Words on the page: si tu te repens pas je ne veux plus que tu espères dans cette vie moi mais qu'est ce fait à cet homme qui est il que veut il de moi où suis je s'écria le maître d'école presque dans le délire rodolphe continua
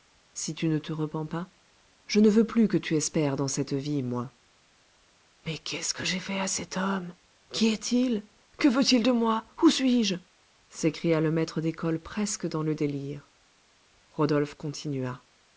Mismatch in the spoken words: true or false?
true